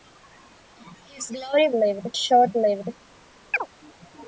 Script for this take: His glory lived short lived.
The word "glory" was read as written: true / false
true